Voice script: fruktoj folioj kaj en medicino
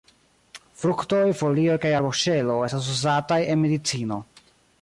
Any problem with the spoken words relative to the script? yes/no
yes